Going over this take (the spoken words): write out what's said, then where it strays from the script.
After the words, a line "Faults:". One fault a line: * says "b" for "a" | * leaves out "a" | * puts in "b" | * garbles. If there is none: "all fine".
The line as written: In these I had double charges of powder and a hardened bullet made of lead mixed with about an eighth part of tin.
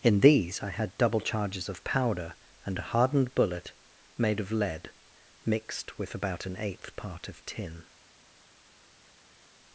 In these I had double charges of powder and a hardened bullet made of lead mixed with about an eighth part of tin.
Faults:
all fine